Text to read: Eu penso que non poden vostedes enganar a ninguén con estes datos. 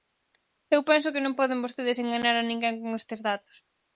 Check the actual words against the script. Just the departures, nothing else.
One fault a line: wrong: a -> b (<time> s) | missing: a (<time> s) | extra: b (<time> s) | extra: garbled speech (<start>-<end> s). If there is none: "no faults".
no faults